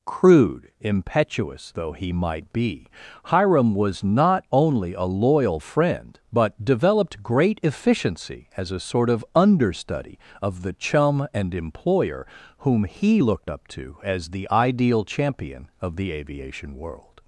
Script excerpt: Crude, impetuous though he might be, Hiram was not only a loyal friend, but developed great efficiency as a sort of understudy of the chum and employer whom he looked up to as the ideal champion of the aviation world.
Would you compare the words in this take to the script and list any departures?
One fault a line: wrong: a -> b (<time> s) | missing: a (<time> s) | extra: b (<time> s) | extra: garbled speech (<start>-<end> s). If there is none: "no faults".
no faults